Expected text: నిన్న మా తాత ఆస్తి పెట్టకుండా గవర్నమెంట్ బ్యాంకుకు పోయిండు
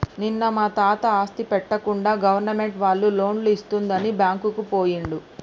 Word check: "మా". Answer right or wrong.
right